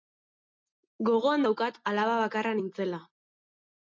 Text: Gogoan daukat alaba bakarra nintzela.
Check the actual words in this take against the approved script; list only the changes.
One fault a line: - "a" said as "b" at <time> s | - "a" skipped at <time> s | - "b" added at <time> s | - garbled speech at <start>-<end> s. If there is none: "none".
none